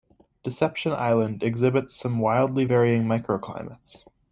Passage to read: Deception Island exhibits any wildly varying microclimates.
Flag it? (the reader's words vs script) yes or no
yes